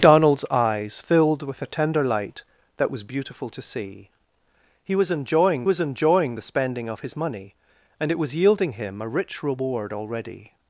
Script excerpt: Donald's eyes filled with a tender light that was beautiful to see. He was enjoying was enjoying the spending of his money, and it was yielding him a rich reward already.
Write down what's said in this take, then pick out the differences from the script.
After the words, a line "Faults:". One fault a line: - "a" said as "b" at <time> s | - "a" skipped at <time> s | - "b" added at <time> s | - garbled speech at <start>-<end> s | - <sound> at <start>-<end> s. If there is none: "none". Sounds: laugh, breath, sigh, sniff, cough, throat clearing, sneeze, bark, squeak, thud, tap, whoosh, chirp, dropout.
Donald's eyes filled with a tender light that was beautiful to see. He was enjoying was enjoying the spending of his money, and it was yielding him a rich reward already.
Faults:
none